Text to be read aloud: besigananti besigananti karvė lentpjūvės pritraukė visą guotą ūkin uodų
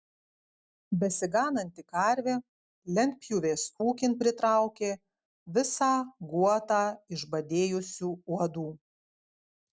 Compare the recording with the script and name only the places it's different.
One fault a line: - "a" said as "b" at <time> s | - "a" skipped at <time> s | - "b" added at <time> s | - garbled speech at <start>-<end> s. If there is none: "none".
- "besigananti" skipped at 1.8 s
- "ūkin" added at 3.9 s
- "ūkin" said as "išbadėjusių" at 7.2 s